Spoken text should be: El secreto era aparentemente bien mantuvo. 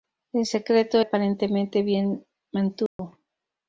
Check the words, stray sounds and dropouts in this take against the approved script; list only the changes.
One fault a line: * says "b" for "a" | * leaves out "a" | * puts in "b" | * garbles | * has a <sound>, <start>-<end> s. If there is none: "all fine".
* leaves out "era"
* has a dropout, 2.9-3.0 s